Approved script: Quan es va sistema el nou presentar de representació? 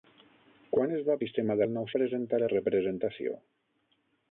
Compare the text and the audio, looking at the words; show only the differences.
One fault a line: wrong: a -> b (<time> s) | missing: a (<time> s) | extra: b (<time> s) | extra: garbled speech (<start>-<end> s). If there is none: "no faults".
no faults